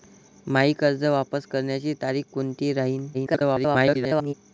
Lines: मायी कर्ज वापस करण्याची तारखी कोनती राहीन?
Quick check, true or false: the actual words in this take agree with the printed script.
false